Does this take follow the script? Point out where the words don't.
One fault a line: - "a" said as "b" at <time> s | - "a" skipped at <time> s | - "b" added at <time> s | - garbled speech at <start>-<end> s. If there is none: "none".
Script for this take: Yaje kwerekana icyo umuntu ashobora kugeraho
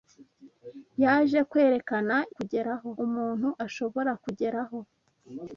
- "icyo" said as "kugeraho" at 2.4 s